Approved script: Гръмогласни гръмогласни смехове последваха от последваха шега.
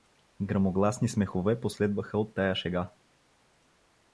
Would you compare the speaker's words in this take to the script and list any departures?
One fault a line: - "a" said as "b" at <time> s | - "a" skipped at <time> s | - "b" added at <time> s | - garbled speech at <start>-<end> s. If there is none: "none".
- "гръмогласни" skipped at 1.1 s
- "последваха" said as "тая" at 2.3 s